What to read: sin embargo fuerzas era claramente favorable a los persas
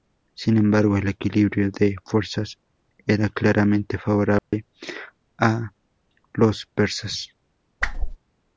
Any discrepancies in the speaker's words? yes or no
yes